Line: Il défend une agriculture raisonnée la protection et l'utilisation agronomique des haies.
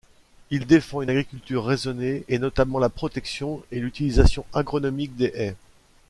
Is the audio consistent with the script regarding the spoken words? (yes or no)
no